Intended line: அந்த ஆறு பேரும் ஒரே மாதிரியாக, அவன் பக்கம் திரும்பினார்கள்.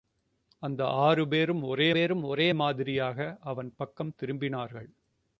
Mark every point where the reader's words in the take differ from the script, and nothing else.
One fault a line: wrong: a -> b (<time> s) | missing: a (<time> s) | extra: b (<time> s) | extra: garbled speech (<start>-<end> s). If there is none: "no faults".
extra: பேரும் ஒரே (1.9 s)